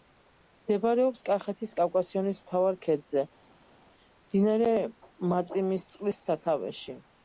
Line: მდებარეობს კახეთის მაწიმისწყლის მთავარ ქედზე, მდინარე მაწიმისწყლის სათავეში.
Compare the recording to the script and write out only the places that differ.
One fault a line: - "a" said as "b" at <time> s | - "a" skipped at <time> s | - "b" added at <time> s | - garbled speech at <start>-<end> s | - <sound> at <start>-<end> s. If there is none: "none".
- "მაწიმისწყლის" said as "კავკასიონის" at 1.8 s